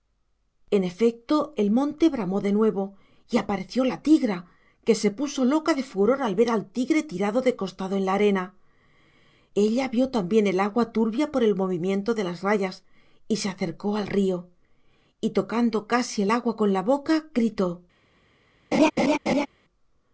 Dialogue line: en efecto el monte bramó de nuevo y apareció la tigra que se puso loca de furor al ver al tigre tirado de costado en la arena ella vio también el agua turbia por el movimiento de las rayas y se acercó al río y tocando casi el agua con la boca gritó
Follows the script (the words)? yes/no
yes